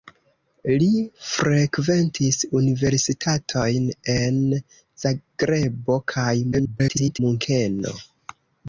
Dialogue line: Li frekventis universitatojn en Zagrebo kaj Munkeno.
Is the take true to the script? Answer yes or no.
no